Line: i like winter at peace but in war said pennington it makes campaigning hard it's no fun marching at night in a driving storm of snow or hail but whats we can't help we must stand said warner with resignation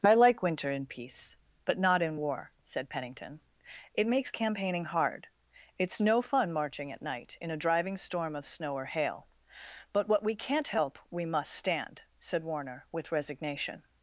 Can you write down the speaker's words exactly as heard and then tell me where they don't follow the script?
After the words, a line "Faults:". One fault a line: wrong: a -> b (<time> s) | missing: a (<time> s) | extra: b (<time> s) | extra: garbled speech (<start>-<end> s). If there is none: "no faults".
i like winter in peace but not in war said pennington it makes campaigning hard it's no fun marching at night in a driving storm of snow or hail but what we can't help we must stand said warner with resignation
Faults:
wrong: at -> in (0.7 s)
extra: not (1.8 s)
wrong: whats -> what (10.1 s)